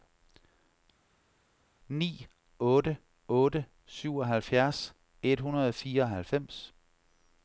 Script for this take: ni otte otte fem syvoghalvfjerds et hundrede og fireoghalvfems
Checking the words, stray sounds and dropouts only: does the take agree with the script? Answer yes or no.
no